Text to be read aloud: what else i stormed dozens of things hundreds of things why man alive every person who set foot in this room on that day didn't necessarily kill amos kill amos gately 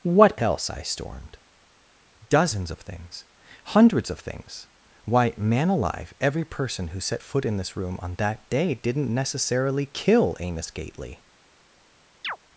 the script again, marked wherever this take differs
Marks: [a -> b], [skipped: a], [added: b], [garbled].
what else i stormed dozens of things hundreds of things why man alive every person who set foot in this room on that day didn't necessarily kill amos [skipped: kill amos] gately